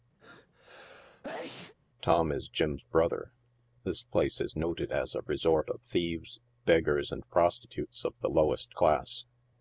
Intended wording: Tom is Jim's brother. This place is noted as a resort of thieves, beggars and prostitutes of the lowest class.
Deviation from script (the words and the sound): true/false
true